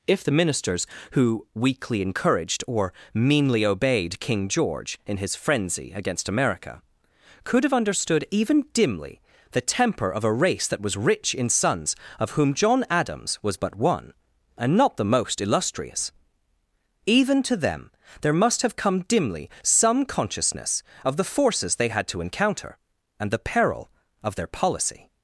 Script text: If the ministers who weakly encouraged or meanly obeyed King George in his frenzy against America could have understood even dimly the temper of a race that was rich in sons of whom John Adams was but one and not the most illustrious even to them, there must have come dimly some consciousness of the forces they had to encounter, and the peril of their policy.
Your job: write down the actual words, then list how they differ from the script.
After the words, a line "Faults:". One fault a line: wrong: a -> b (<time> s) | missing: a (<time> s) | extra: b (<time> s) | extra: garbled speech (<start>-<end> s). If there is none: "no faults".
If the ministers who weakly encouraged or meanly obeyed King George in his frenzy against America could have understood even dimly the temper of a race that was rich in sons of whom John Adams was but one and not the most illustrious even to them, there must have come dimly some consciousness of the forces they had to encounter, and the peril of their policy.
Faults:
no faults